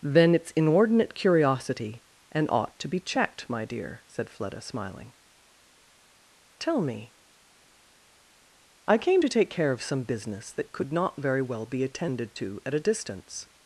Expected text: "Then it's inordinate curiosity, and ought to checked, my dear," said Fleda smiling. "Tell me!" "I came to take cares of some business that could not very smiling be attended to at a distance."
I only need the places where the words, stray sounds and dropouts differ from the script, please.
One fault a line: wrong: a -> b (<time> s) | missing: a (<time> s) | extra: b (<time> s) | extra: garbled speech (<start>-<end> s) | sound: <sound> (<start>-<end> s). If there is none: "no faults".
extra: be (2.9 s)
wrong: cares -> care (9.5 s)
wrong: smiling -> well (11.4 s)